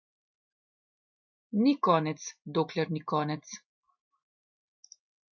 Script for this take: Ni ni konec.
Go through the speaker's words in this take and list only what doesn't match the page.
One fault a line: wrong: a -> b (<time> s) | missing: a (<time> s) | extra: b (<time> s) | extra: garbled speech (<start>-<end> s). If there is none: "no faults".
extra: konec dokler (1.9 s)